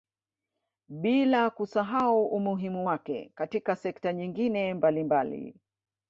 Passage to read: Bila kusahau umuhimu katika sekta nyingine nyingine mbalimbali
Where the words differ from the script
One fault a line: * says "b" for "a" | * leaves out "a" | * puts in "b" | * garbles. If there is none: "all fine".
* puts in "wake"
* leaves out "nyingine"